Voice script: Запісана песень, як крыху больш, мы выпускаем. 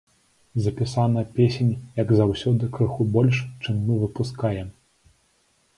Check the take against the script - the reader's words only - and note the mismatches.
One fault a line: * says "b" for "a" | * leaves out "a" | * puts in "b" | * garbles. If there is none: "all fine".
* puts in "заўсёды"
* puts in "чым"